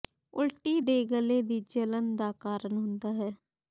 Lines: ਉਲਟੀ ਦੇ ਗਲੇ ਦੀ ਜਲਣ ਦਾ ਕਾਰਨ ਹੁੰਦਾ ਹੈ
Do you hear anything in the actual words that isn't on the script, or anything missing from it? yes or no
no